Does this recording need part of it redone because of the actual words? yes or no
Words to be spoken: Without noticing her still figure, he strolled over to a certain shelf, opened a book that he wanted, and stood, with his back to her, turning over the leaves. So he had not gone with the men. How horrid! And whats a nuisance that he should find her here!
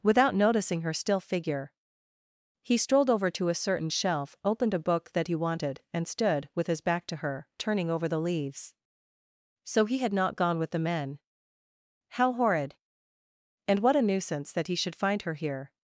yes